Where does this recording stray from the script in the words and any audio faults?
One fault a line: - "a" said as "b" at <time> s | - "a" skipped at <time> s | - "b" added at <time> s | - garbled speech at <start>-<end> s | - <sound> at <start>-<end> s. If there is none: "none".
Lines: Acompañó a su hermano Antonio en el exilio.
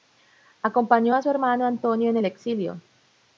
none